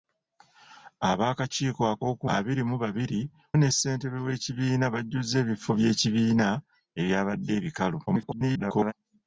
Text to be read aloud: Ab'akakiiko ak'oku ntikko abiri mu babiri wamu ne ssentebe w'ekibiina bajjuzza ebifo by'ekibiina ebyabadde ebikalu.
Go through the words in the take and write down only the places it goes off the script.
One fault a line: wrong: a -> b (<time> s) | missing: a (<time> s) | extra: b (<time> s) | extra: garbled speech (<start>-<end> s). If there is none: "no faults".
missing: ntikko (2.2 s)
missing: wamu (3.2 s)
extra: garbled speech (8.1-8.9 s)